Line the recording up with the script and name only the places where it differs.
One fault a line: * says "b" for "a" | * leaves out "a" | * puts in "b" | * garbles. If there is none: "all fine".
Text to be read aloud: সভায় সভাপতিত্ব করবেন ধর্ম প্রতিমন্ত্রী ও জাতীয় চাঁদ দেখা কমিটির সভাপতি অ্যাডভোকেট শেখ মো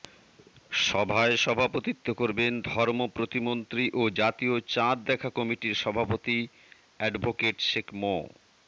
all fine